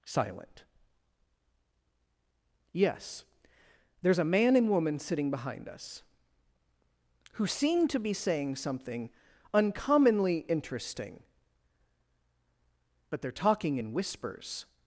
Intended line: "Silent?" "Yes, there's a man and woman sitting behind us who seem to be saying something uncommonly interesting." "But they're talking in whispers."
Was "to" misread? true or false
false